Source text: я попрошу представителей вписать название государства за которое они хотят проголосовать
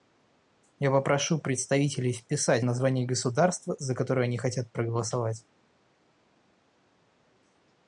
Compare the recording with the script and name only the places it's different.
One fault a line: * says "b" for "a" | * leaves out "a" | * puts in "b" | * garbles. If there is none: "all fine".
all fine